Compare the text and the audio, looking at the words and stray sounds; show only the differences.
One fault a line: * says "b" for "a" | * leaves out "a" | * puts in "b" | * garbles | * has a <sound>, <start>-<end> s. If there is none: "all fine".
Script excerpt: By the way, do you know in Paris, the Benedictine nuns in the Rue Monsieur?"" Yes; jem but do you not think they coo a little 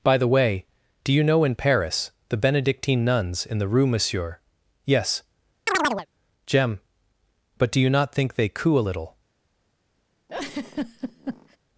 * has a chirp, 5.7-6.1 s
* has a laugh, 10.3-11.6 s